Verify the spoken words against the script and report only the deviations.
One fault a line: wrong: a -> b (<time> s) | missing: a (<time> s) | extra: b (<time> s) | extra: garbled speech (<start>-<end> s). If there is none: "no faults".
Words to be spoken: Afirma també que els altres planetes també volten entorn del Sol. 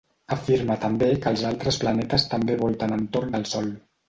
no faults